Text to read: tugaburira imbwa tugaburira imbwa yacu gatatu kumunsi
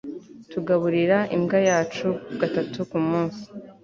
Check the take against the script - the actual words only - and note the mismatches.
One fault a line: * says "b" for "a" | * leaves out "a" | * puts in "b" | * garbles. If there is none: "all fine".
* leaves out "tugaburira imbwa"